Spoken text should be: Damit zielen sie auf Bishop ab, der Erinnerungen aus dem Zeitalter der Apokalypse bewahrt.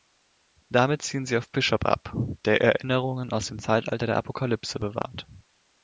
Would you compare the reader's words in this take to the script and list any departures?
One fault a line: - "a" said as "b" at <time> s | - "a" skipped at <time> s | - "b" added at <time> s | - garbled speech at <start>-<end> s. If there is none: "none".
none